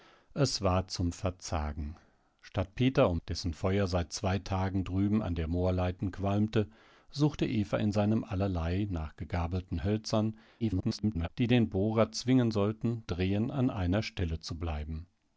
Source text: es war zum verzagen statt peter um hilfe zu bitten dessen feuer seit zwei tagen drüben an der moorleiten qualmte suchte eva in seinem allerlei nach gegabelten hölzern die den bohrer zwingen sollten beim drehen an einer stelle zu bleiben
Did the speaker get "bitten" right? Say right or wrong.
wrong